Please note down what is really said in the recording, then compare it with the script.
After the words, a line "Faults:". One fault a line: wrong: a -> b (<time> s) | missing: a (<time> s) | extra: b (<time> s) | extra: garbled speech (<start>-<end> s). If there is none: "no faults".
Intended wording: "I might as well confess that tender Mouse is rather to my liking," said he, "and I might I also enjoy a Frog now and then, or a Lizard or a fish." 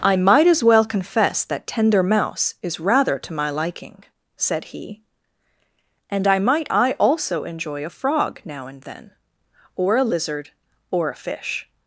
"I might as well confess that tender Mouse is rather to my liking," said he, "and I might I also enjoy a Frog now and then, or a Lizard or a fish."
Faults:
no faults